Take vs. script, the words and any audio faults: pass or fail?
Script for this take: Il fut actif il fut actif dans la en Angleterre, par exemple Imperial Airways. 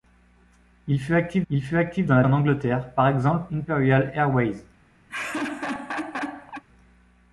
fail